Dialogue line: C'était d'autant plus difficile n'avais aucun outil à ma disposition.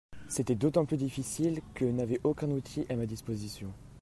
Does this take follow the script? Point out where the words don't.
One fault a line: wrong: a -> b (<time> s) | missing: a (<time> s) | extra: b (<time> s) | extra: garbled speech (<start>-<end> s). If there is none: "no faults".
extra: que (1.8 s)